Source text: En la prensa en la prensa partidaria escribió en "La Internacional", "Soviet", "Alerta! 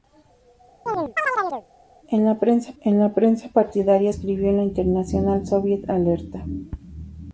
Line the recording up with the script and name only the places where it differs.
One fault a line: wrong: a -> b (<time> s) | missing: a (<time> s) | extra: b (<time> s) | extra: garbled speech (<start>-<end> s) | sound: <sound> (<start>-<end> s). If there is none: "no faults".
sound: chirp (0.9-1.7 s)